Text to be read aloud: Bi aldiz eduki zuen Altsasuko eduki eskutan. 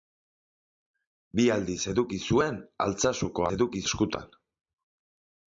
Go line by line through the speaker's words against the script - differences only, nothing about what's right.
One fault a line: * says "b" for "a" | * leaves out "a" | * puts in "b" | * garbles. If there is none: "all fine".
all fine